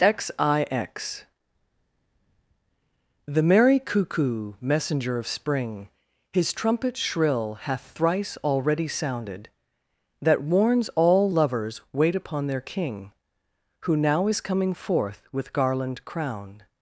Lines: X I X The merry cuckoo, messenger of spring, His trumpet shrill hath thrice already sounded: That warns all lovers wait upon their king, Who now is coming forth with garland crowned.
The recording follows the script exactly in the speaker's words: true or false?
true